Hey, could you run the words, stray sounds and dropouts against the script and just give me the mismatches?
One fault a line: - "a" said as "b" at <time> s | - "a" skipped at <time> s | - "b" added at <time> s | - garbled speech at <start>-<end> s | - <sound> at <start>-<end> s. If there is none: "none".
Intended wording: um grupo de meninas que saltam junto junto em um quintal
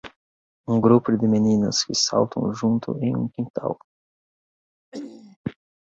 - "junto" skipped at 3.0 s
- throat clearing at 4.9-5.4 s